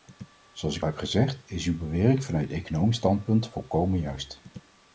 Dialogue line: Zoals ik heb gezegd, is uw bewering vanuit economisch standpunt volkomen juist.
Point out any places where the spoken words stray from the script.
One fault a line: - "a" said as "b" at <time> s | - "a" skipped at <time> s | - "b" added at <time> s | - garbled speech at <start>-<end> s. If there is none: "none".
none